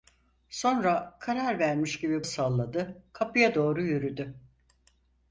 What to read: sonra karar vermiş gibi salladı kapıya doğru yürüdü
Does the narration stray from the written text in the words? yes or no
no